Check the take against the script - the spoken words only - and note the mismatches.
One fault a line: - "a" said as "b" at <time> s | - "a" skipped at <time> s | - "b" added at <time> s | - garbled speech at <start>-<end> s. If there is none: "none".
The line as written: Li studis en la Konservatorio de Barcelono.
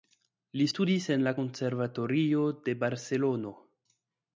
none